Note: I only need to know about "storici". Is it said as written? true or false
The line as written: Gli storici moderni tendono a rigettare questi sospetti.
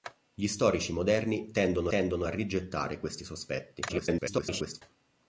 true